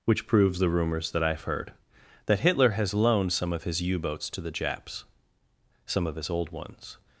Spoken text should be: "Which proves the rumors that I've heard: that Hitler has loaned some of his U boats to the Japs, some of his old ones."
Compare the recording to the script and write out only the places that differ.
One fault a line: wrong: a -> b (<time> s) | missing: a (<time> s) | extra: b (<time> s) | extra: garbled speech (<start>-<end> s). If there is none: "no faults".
no faults